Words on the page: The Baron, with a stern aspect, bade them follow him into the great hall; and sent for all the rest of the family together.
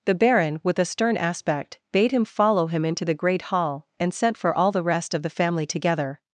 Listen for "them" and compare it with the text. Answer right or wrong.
wrong